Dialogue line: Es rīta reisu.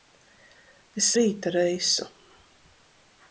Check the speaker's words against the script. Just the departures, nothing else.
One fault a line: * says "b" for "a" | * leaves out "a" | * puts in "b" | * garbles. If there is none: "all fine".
all fine